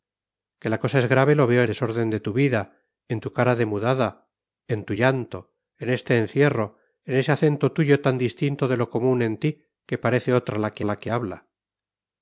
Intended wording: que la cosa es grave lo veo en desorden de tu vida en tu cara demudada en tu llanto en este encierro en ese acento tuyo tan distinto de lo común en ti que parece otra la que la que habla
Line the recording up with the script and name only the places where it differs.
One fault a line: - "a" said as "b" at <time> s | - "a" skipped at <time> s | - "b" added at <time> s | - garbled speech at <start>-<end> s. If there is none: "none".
none